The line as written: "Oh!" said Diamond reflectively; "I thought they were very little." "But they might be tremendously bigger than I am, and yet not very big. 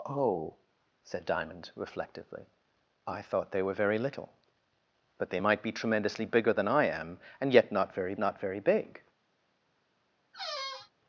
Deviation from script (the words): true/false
true